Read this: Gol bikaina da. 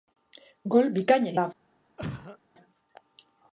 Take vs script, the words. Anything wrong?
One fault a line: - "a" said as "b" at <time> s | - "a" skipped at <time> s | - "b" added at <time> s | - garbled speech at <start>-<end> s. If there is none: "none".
none